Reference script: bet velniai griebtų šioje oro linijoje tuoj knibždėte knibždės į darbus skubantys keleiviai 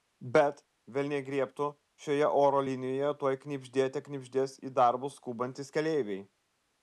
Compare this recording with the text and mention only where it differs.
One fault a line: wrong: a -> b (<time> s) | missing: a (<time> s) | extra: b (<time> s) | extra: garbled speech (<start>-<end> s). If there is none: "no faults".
no faults